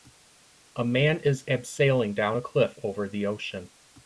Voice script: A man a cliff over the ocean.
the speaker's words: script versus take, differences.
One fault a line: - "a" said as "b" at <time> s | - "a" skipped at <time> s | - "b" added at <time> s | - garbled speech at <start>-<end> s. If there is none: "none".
- "is abseiling down" added at 1.2 s